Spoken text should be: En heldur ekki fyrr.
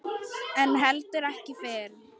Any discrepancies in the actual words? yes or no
no